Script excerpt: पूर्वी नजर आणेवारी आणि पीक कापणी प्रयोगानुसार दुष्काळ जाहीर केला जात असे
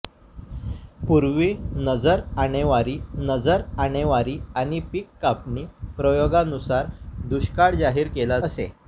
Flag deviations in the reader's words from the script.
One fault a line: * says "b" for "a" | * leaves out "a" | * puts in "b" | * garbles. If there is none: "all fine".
* puts in "नजर आणेवारी"
* leaves out "जात"